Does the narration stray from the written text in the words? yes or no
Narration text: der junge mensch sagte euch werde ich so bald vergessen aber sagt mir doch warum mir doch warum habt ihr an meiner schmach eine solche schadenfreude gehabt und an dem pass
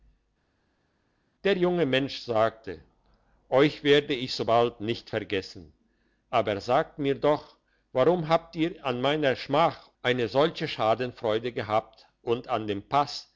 yes